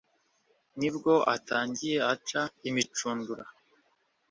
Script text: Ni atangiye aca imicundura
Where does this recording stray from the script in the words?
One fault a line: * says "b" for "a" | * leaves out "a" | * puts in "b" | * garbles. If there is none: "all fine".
* puts in "bwo"